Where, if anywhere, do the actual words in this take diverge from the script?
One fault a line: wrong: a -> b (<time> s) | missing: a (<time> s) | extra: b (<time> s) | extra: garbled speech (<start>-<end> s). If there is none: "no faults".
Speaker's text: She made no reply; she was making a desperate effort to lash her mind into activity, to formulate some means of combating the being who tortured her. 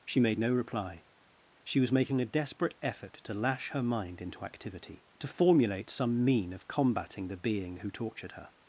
wrong: means -> mean (6.2 s)